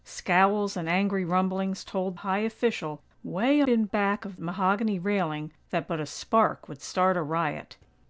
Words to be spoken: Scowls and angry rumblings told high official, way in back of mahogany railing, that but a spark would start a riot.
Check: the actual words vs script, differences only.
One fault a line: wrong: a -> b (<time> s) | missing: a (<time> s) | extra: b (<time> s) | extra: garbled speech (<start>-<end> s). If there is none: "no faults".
no faults